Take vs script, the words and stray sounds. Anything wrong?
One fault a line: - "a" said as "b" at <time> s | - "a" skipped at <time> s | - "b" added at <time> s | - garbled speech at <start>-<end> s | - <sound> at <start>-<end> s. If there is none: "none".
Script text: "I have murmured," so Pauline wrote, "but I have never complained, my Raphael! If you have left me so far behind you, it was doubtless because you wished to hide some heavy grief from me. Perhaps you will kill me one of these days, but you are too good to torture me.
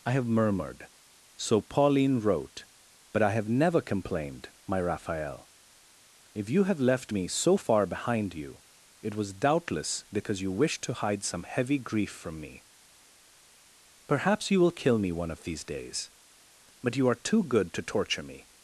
none